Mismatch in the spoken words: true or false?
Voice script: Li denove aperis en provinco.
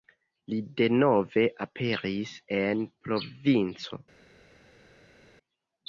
false